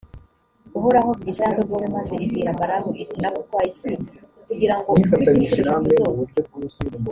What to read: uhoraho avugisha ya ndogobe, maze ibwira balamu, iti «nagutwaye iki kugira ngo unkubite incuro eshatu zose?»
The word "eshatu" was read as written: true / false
true